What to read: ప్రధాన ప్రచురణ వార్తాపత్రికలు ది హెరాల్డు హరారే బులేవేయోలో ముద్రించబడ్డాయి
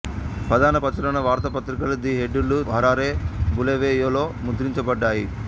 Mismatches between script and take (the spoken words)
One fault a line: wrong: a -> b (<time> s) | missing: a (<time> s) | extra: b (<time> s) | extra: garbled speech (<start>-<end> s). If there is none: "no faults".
no faults